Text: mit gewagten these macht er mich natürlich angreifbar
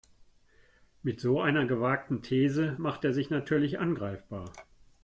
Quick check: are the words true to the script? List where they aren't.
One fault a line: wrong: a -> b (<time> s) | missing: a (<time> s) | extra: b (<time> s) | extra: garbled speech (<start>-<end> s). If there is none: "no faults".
extra: so einer (1.2 s)
wrong: mich -> sich (3.1 s)